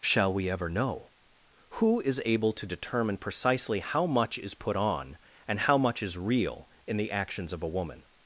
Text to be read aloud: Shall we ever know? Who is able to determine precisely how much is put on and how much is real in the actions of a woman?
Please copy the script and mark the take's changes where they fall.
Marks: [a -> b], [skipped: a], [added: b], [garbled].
Shall we ever know? Who is able to determine precisely how much is put on and how much is real in the actions of a woman?